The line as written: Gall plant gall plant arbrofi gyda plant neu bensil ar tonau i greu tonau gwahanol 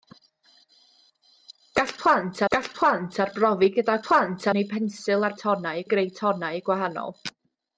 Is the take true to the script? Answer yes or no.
yes